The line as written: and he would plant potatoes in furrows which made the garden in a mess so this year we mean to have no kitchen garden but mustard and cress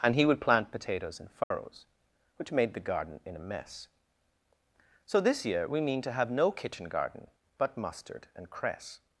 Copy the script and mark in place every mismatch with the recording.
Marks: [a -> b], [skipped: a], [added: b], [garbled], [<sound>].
and he would plant potatoes in furrows [dropout] which made the garden in a mess so this year we mean to have no kitchen garden but mustard and cress